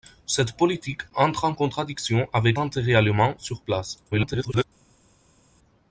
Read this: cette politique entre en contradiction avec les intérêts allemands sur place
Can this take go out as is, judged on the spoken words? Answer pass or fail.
fail